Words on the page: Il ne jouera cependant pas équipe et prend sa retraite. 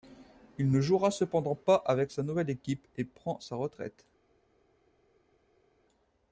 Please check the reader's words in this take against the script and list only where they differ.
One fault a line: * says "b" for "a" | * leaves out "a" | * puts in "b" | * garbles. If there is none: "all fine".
* puts in "avec sa nouvelle"